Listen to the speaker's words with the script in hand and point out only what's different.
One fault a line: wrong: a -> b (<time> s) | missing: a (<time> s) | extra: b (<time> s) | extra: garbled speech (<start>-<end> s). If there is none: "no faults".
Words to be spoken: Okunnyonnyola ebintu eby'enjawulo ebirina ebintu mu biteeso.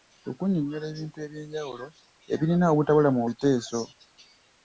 wrong: ebintu -> obutabula (2.7 s)